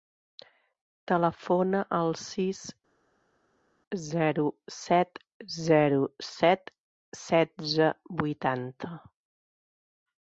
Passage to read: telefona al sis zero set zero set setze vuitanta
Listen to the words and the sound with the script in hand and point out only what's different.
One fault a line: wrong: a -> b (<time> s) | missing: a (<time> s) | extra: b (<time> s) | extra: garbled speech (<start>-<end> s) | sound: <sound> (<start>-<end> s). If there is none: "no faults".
no faults